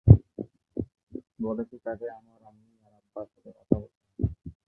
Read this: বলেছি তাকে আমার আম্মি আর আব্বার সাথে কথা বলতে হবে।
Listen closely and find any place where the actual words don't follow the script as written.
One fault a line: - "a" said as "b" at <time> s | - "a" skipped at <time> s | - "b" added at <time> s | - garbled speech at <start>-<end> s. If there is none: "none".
none